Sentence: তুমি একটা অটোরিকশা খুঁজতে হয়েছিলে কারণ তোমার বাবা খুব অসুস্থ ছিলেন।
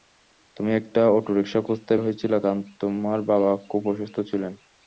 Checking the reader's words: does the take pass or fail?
pass